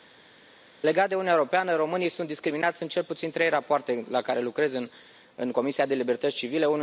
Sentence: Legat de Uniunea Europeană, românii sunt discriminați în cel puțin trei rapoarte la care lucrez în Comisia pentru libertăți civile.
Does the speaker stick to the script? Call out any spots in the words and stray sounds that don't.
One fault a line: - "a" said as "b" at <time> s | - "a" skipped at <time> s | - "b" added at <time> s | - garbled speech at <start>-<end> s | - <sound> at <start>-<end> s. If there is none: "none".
none